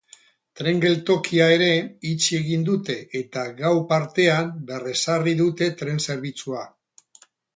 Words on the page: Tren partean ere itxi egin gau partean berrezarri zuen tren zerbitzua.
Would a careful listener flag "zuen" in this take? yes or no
yes